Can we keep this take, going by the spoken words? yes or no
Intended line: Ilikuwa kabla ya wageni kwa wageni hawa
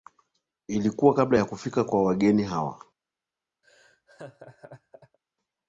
no